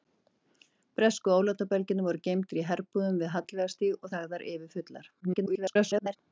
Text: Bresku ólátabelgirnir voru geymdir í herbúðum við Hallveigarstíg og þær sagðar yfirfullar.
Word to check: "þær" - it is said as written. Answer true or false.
false